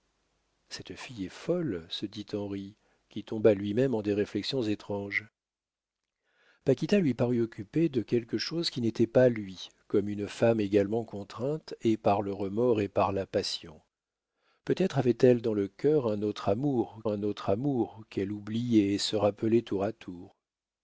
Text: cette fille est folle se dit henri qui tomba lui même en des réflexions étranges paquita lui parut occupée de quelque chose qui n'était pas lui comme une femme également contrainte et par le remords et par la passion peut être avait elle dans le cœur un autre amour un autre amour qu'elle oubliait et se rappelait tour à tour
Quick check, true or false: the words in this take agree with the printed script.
true